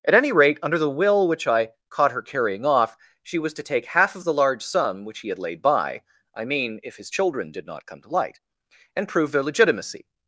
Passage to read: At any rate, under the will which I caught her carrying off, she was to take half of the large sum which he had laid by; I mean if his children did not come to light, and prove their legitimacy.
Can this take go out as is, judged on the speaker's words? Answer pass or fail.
pass